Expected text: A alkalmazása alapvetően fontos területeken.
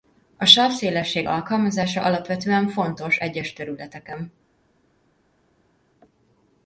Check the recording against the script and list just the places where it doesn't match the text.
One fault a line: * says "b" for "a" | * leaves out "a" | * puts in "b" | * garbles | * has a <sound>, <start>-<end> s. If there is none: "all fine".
* puts in "sávszélesség"
* puts in "egyes"